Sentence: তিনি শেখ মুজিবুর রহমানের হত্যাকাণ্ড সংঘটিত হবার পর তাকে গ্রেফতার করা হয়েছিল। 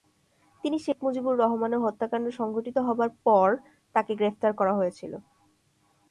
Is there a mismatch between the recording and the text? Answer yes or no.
no